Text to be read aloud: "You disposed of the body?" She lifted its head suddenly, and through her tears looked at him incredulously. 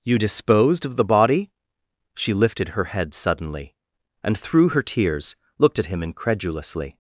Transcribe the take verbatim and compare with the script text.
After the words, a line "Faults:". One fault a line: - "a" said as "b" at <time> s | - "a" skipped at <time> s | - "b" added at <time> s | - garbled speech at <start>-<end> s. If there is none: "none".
"You disposed of the body?" She lifted her head suddenly, and through her tears looked at him incredulously.
Faults:
- "its" said as "her" at 2.7 s